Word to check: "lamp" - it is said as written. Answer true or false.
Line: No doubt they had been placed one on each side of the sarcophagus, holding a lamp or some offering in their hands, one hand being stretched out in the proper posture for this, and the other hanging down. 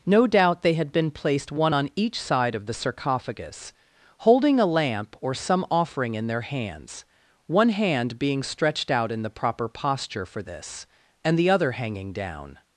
true